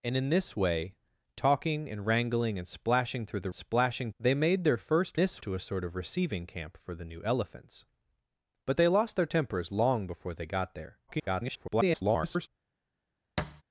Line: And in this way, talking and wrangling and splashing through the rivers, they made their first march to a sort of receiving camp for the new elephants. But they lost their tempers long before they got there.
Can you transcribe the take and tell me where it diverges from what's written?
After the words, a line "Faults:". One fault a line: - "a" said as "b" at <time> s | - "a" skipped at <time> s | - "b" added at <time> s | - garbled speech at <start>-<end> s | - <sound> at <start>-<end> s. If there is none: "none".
And in this way, talking and wrangling and splashing through the splashing, they made their first this to a sort of receiving camp for the new elephants. But they lost their tempers long before they got there. [garbled]
Faults:
- "rivers" said as "splashing" at 3.5 s
- "march" said as "this" at 5.2 s
- garbled speech at 11.1-12.5 s
- thud at 13.4-13.6 s